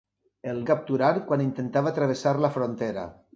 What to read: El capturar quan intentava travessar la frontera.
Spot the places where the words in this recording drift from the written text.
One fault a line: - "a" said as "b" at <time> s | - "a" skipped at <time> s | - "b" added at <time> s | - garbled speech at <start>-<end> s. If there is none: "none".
none